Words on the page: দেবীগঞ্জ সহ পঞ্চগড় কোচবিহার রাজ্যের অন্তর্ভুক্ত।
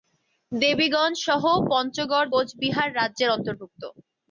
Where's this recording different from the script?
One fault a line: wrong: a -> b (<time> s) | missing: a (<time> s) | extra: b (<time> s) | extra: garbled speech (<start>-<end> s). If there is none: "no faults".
no faults